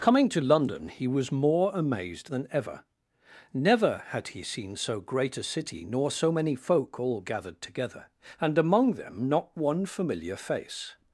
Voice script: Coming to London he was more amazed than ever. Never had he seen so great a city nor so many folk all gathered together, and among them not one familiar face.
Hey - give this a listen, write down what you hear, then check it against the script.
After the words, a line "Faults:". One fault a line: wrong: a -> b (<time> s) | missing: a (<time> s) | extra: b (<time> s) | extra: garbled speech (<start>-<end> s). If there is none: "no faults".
Coming to London he was more amazed than ever. Never had he seen so great a city nor so many folk all gathered together, and among them not one familiar face.
Faults:
no faults